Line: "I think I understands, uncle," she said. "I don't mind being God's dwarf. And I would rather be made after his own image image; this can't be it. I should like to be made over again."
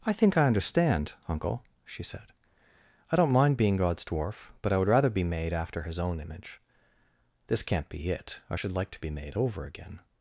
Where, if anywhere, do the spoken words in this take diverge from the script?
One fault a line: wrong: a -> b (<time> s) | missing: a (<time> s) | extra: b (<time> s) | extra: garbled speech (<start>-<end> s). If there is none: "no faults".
wrong: understands -> understand (0.5 s)
wrong: And -> But (4.6 s)
missing: image (6.6 s)